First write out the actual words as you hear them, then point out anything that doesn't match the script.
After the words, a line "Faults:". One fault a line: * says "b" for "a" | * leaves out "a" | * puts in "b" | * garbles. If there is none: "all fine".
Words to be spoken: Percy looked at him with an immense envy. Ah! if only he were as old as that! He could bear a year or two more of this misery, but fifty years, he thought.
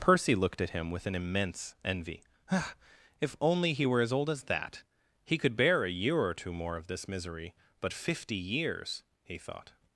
Percy looked at him with an immense envy. Ah! if only he were as old as that! He could bear a year or two more of this misery, but fifty years, he thought.
Faults:
all fine